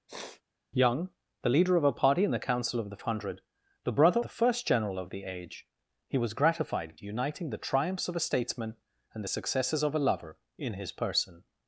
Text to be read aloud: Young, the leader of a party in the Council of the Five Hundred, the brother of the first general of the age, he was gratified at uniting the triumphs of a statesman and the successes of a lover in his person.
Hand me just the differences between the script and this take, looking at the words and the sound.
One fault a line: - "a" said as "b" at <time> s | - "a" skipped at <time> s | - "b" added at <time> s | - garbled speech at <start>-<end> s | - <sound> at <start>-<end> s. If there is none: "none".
- sniff at 0.1-0.4 s
- "Five" skipped at 3.0 s
- "of" skipped at 4.2 s